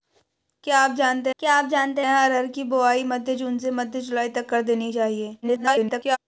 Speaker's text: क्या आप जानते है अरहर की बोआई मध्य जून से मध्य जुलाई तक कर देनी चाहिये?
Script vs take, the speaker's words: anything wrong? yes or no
yes